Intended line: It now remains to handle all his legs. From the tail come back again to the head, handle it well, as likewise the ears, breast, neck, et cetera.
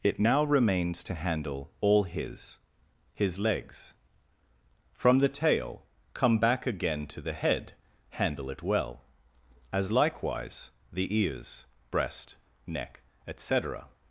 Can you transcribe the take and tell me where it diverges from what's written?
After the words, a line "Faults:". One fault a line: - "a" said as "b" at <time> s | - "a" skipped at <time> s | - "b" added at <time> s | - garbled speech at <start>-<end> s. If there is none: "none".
It now remains to handle all his his legs. From the tail come back again to the head, handle it well, as likewise the ears, breast, neck, et cetera.
Faults:
- "his" added at 3.1 s